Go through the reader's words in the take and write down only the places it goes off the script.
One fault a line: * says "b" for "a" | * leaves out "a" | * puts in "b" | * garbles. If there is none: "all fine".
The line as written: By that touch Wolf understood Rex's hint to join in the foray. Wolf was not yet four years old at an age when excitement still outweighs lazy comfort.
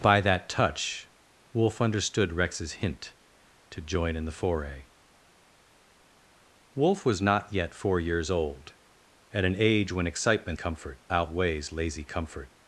* says "comfort" for "still"